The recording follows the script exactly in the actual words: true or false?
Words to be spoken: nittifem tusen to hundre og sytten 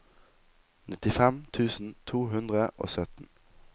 true